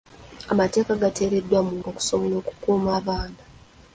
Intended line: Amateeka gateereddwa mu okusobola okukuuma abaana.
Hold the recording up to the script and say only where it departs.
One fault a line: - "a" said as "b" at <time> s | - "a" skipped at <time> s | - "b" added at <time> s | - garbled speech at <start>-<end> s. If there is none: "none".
none